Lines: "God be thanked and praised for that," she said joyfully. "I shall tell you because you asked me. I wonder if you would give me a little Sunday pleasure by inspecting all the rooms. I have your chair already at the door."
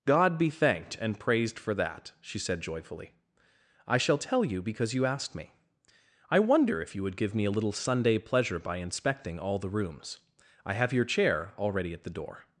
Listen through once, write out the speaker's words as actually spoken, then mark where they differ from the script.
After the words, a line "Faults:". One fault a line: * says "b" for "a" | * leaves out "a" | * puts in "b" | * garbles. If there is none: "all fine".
"God be thanked and praised for that," she said joyfully. "I shall tell you because you asked me. I wonder if you would give me a little Sunday pleasure by inspecting all the rooms. I have your chair already at the door."
Faults:
all fine